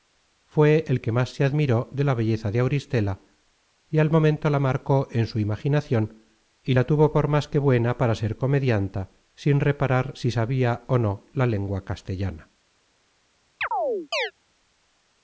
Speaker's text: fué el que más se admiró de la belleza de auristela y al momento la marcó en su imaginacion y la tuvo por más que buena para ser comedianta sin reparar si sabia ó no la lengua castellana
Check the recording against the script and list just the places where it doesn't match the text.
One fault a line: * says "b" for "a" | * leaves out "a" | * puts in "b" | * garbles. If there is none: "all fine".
all fine